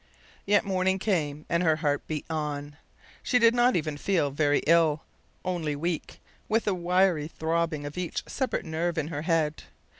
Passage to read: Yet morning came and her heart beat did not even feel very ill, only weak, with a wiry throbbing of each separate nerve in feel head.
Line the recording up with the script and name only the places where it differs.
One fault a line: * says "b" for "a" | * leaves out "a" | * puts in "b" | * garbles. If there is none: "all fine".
* puts in "on She"
* says "her" for "feel"